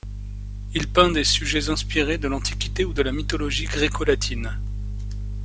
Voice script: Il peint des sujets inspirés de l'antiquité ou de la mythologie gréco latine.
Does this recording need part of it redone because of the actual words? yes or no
no